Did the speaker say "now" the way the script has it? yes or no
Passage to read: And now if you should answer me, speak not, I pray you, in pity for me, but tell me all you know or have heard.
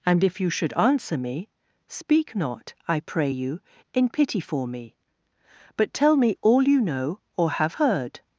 no